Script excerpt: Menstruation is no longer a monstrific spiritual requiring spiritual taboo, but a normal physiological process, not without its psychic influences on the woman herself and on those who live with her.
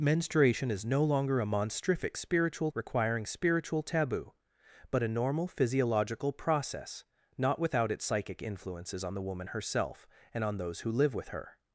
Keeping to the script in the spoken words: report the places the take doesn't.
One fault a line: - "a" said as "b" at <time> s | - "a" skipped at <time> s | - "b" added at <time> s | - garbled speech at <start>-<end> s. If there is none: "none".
none